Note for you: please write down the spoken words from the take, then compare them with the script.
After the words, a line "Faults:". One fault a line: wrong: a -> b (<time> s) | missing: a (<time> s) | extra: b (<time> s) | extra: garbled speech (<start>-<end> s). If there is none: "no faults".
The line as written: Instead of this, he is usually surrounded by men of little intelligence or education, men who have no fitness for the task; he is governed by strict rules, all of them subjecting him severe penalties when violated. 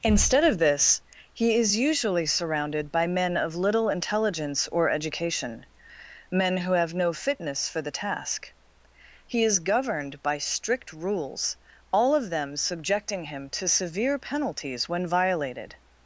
Instead of this, he is usually surrounded by men of little intelligence or education, men who have no fitness for the task; he is governed by strict rules, all of them subjecting him to severe penalties when violated.
Faults:
extra: to (13.5 s)